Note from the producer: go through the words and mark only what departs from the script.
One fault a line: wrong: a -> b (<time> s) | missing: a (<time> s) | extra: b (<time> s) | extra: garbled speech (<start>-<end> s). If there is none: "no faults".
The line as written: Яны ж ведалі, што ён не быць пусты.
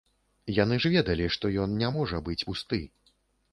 extra: можа (2.0 s)